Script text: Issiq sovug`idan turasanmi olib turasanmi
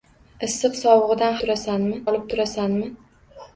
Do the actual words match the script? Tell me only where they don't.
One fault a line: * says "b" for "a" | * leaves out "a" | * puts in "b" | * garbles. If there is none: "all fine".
all fine